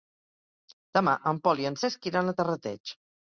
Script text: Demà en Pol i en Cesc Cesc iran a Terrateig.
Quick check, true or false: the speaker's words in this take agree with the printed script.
false